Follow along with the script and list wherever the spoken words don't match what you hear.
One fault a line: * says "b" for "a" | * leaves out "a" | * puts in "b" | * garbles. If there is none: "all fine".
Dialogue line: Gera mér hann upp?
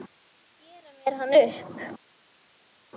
all fine